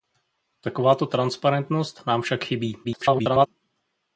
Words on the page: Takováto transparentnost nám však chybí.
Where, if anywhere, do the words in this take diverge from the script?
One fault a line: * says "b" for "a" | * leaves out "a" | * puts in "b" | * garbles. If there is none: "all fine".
* garbles